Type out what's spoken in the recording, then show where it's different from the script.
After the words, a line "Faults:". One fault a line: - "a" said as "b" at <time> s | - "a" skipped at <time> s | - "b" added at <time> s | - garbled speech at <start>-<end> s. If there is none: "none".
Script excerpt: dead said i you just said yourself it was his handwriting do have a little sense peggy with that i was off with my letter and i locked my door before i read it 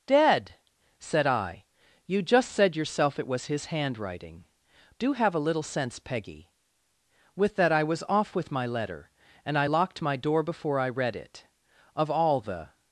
dead said i you just said yourself it was his handwriting do have a little sense peggy with that i was off with my letter and i locked my door before i read it of all the
Faults:
- "of all the" added at 12.0 s